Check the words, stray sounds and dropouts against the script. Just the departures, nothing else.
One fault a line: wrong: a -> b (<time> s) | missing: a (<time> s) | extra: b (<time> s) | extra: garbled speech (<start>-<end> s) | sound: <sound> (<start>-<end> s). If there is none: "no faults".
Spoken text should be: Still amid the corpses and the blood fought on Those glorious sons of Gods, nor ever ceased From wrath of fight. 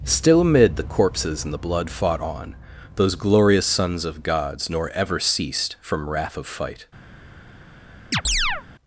sound: chirp (8.1-8.6 s)